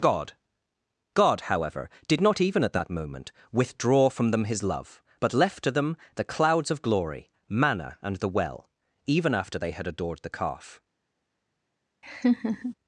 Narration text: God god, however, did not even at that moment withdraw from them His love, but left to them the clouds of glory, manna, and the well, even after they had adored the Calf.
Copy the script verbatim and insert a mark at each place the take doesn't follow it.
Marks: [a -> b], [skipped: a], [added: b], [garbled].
God god, however, did not even at that moment withdraw from them His love, but left to them the clouds of glory, manna, and the well, even after they had adored the Calf.